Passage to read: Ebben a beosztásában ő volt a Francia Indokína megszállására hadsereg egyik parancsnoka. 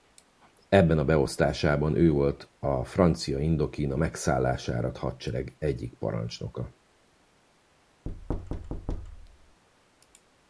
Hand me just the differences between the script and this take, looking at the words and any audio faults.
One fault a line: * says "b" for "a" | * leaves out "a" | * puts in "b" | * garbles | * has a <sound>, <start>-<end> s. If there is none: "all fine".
* has a thud, 8.1-9.6 s